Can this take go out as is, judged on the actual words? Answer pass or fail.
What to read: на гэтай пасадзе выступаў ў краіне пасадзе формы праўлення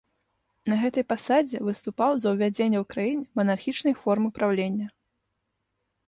fail